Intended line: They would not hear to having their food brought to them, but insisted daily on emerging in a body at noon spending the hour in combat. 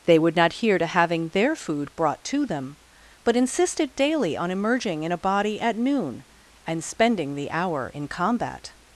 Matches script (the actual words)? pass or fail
fail